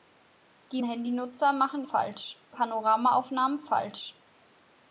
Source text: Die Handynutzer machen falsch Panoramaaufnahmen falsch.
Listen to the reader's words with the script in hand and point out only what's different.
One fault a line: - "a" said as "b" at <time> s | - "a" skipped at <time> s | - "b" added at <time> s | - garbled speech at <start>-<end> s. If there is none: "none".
none